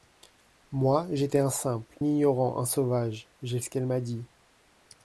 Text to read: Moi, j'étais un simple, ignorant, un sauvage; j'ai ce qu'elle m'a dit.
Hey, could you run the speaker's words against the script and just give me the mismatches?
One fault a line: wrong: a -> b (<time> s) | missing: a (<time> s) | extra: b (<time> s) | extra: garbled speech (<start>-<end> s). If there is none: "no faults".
no faults